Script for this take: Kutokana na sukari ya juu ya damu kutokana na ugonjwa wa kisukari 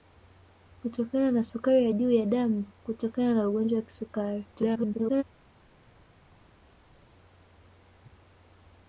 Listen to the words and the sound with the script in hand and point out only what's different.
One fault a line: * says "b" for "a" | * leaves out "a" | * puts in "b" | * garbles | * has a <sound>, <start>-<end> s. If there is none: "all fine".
* garbles